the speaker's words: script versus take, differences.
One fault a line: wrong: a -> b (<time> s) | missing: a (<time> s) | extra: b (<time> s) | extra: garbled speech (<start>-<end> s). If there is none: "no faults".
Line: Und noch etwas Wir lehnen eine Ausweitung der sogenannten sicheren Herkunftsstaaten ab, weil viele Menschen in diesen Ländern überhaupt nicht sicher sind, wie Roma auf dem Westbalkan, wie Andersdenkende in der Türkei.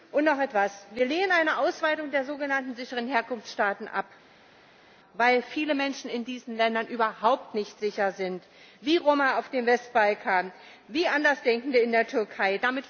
no faults